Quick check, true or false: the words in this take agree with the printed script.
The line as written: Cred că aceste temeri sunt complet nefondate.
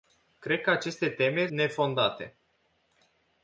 false